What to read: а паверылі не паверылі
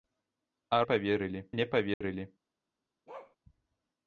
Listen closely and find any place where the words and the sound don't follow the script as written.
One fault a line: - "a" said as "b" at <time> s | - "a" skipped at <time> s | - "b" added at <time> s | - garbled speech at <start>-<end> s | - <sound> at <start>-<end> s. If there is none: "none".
- dropout at 1.9-2.0 s
- bark at 3.1-3.4 s